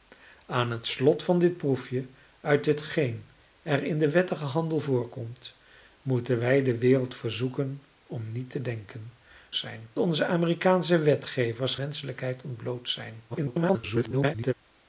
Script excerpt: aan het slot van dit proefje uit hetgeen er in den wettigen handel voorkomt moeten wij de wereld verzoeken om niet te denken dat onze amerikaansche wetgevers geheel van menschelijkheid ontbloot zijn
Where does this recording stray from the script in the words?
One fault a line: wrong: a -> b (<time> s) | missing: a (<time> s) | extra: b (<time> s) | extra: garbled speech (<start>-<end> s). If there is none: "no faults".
wrong: dat -> zijn (9.5 s)
missing: geheel van (11.8 s)
extra: garbled speech (13.3-14.5 s)